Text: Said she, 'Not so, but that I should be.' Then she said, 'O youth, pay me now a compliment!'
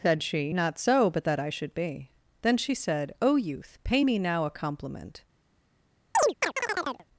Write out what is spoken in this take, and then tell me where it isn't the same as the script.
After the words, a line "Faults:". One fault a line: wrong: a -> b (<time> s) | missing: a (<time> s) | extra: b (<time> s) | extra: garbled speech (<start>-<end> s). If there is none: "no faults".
Said she, 'Not so, but that I should be.' Then she said, 'O youth, pay me now a compliment!'
Faults:
no faults